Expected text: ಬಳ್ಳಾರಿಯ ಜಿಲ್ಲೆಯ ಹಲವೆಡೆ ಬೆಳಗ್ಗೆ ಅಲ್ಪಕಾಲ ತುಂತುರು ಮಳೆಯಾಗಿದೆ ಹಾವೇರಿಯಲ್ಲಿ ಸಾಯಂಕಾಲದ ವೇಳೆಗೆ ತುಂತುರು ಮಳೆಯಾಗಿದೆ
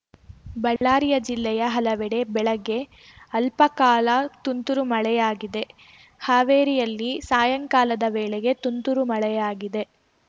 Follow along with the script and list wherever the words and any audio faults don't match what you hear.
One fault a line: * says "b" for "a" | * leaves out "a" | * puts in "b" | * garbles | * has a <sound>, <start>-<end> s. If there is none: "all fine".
* has a dropout, 0.8-0.8 s